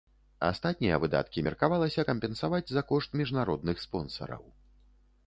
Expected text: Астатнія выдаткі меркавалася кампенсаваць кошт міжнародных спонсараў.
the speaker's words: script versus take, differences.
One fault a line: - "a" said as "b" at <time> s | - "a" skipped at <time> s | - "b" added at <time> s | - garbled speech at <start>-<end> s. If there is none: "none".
- "за" added at 2.7 s